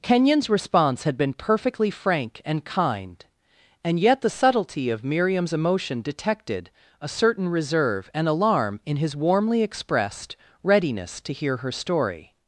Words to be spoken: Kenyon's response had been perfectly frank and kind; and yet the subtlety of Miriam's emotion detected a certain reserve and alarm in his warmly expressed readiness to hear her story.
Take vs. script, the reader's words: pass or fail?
pass